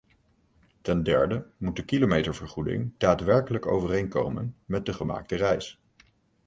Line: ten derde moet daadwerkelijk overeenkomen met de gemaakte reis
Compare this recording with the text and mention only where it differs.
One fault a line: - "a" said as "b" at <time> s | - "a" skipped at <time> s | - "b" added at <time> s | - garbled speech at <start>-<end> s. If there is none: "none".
- "de kilometervergoeding" added at 1.8 s